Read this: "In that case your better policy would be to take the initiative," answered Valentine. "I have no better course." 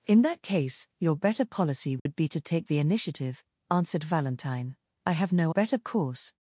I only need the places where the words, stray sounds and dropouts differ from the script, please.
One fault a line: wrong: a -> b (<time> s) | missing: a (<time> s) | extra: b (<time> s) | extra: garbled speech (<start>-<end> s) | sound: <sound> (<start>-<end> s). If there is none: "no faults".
sound: dropout (2.0-2.1 s)